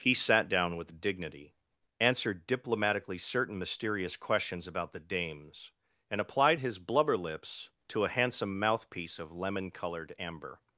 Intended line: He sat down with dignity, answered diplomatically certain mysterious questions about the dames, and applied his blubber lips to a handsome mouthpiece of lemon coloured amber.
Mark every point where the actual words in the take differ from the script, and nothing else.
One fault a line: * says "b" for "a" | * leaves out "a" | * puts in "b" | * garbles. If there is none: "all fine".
all fine